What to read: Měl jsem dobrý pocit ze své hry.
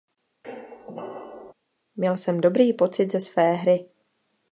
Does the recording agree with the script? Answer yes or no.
yes